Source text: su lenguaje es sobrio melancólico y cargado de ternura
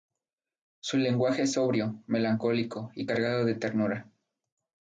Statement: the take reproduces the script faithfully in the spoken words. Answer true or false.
true